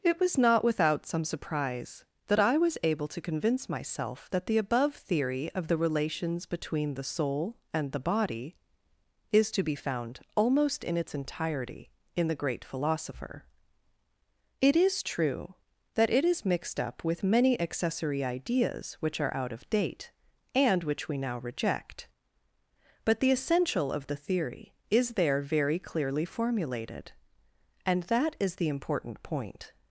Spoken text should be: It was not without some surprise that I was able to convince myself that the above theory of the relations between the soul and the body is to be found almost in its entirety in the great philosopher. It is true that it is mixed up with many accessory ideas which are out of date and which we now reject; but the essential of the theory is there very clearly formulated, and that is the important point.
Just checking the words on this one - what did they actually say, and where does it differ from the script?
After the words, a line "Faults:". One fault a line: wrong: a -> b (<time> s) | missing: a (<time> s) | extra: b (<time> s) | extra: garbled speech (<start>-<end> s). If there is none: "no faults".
It was not without some surprise that I was able to convince myself that the above theory of the relations between the soul and the body is to be found almost in its entirety in the great philosopher. It is true that it is mixed up with many accessory ideas which are out of date and which we now reject; but the essential of the theory is there very clearly formulated, and that is the important point.
Faults:
no faults